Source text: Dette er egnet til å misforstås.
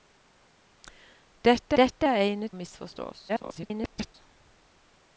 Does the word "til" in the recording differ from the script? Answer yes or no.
yes